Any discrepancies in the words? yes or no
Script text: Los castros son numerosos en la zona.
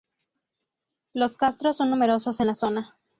no